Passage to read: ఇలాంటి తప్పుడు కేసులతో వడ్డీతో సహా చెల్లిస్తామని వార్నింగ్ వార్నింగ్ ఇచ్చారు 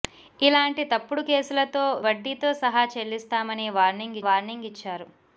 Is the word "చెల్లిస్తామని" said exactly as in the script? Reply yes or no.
yes